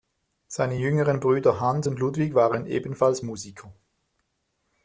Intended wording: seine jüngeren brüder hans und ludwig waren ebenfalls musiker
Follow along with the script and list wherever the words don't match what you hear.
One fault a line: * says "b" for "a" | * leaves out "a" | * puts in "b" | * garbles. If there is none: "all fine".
all fine